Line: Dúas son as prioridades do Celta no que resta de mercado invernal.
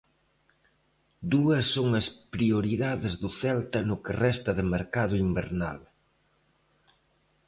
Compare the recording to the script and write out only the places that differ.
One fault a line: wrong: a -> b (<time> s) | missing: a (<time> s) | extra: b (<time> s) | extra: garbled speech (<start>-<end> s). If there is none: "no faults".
no faults